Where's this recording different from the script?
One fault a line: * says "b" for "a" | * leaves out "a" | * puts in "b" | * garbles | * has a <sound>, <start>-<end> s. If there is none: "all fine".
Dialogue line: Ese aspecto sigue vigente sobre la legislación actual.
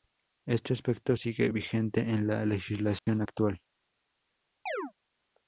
* says "Este" for "Ese"
* says "en" for "sobre"
* has a dropout, 3.0-3.1 s
* has a chirp, 4.7-4.9 s